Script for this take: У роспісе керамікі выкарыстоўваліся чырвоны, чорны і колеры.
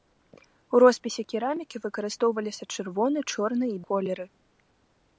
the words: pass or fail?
pass